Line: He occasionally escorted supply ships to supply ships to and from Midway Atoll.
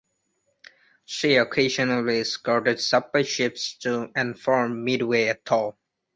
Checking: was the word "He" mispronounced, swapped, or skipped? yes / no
yes